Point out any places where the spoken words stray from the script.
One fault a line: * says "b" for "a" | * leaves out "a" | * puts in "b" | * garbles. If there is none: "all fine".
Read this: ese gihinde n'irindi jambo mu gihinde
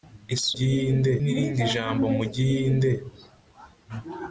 all fine